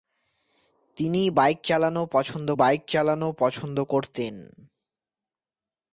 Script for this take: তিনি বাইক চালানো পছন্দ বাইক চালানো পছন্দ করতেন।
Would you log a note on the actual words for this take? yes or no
no